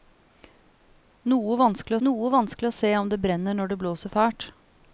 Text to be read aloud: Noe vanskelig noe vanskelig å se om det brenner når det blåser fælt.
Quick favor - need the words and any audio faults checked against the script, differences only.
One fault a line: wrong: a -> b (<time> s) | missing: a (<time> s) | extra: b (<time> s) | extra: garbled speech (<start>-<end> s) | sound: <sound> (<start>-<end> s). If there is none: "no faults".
no faults